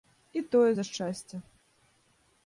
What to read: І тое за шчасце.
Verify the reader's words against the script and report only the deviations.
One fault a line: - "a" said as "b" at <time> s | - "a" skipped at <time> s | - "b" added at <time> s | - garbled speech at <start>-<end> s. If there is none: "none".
none